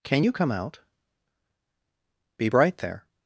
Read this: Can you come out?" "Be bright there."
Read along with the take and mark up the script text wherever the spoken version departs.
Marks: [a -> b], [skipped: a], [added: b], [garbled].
Can you come out?" "Be bright there."